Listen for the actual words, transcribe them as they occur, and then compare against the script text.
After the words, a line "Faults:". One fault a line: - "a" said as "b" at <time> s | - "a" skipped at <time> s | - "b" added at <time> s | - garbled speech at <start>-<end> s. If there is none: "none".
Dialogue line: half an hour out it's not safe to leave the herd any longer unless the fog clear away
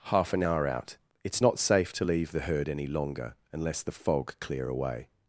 half an hour out it's not safe to leave the herd any longer unless the fog clear away
Faults:
none